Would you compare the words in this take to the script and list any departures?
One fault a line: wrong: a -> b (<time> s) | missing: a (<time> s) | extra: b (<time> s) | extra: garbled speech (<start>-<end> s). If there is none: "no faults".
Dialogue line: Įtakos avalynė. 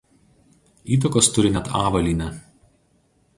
extra: turi net (1.4 s)